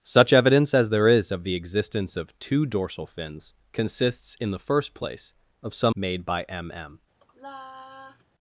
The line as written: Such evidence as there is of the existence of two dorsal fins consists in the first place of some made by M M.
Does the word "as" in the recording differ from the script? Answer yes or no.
no